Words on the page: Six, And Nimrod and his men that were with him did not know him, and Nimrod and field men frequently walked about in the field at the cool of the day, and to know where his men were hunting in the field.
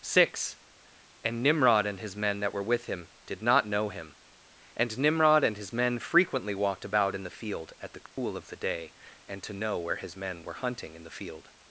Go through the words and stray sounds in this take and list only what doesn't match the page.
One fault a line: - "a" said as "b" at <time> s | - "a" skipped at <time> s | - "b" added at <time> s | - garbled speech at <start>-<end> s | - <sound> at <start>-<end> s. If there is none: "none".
- "field" said as "his" at 5.5 s
- dropout at 8.1-8.2 s